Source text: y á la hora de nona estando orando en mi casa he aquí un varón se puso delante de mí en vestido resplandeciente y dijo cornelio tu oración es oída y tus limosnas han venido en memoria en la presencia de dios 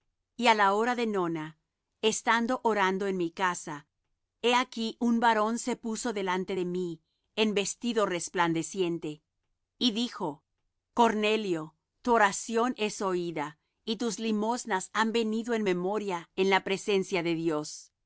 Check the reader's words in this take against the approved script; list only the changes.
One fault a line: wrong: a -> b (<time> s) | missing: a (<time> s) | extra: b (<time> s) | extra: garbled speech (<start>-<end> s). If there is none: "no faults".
no faults